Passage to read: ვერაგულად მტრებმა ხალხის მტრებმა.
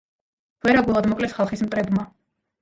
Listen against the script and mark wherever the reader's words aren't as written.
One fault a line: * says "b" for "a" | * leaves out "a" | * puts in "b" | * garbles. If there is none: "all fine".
* says "მოკლეს" for "მტრებმა"